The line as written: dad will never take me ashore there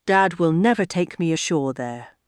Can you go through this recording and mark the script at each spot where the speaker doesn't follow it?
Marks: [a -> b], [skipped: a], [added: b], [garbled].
dad will never take me ashore there